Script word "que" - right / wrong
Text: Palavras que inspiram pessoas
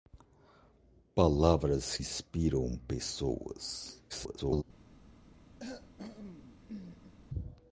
wrong